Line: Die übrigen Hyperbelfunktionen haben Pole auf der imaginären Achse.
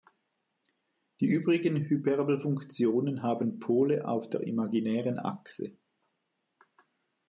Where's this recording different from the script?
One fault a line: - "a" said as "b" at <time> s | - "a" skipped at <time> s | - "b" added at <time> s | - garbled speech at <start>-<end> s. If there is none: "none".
none